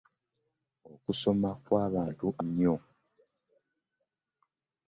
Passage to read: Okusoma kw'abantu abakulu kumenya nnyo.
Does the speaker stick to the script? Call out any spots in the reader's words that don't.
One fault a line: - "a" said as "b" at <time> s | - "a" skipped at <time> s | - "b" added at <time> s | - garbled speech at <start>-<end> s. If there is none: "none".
- "abakulu kumenya" skipped at 2.3 s